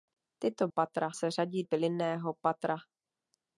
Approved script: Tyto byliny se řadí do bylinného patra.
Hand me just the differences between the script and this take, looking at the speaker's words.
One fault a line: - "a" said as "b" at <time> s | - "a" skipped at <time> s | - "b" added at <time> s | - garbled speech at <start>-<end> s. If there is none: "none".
- "byliny" said as "patra" at 0.7 s
- "do" skipped at 1.6 s